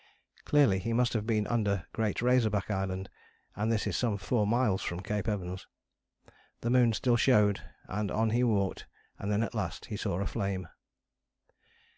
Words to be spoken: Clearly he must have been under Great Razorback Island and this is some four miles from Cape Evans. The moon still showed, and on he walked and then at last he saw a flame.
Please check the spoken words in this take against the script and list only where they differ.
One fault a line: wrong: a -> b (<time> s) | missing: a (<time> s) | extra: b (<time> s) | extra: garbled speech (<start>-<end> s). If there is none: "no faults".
no faults